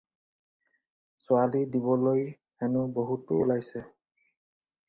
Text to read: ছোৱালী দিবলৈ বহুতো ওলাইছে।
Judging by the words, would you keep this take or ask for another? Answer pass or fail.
fail